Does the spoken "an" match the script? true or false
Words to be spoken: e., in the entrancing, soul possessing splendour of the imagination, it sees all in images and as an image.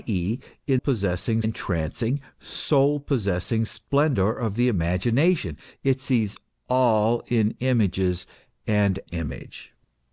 false